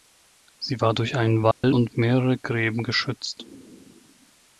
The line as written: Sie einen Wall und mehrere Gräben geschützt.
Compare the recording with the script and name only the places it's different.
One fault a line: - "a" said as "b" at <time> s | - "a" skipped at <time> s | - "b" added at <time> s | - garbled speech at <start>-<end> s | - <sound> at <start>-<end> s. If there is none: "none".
- "war durch" added at 0.8 s
- dropout at 1.5-1.6 s